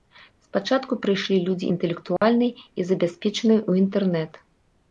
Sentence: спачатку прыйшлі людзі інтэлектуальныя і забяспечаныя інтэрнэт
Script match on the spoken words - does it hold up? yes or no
no